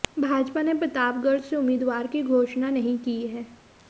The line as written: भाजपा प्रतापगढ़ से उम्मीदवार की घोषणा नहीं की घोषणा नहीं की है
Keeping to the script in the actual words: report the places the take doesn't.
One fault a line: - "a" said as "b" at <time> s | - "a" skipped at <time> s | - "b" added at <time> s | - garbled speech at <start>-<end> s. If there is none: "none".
- "ने" added at 0.6 s
- "घोषणा नहीं की" skipped at 3.2 s